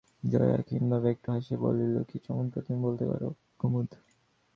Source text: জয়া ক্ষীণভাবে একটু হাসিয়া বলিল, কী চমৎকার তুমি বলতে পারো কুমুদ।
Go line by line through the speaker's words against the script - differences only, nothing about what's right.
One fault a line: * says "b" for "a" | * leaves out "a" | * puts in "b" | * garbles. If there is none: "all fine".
all fine